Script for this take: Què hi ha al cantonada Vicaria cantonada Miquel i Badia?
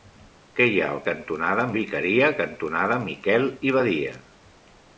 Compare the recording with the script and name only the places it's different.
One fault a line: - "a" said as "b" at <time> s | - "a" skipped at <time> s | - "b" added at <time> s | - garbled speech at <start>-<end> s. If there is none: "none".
none